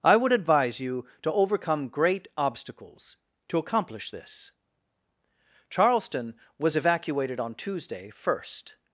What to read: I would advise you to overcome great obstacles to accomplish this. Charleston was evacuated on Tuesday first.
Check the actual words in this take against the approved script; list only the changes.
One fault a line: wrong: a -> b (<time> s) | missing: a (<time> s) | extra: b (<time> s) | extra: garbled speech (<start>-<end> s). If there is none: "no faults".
no faults